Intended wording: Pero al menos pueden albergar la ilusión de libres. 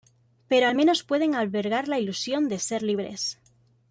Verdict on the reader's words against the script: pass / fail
fail